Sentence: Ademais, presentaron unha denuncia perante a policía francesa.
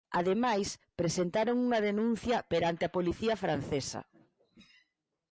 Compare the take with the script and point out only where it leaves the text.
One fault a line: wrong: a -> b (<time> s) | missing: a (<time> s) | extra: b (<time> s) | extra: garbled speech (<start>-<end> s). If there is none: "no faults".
no faults